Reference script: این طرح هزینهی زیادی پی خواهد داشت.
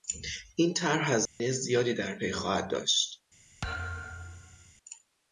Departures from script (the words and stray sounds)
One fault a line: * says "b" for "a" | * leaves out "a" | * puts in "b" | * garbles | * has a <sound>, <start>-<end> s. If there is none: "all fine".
* has a dropout, 1.3-1.4 s
* puts in "در"
* has a thud, 3.6-4.7 s